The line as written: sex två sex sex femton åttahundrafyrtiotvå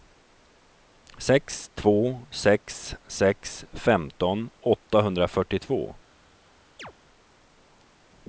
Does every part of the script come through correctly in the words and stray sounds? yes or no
no